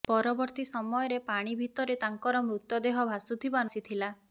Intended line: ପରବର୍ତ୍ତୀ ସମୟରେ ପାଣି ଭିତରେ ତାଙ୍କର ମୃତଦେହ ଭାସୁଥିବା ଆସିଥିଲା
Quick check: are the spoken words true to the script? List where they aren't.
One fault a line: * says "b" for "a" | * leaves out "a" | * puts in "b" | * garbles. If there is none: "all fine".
all fine